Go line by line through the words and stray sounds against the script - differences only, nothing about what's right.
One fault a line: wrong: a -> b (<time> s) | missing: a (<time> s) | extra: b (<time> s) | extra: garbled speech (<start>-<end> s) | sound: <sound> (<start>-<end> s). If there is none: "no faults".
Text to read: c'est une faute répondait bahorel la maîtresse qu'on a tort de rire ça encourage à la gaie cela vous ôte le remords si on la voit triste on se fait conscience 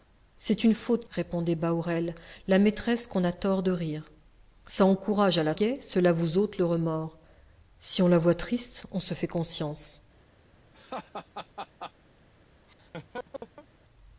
sound: laugh (10.7-11.9 s)
sound: laugh (12.7-13.7 s)